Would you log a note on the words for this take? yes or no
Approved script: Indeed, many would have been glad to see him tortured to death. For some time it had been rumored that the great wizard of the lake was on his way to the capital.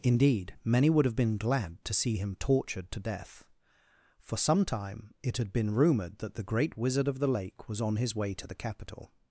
no